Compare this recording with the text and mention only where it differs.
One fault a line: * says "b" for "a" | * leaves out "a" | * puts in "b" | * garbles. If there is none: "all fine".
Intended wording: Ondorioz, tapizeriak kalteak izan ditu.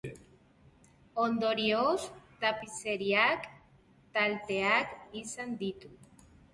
all fine